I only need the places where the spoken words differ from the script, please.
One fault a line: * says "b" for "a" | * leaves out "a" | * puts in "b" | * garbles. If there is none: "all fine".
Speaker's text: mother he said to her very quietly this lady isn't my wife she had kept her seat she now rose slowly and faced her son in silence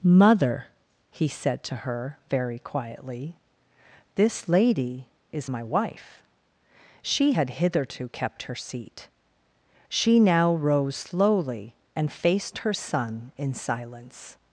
* says "is" for "isn't"
* puts in "hitherto"